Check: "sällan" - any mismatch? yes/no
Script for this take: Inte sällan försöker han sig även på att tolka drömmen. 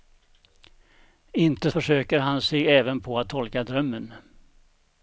yes